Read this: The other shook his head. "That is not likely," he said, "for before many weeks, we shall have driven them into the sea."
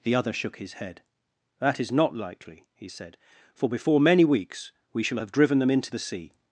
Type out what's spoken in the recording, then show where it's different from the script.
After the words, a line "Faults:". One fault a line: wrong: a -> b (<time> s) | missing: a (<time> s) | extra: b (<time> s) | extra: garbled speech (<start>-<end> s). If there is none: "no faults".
The other shook his head. "That is not likely," he said, "for before many weeks, we shall have driven them into the sea."
Faults:
no faults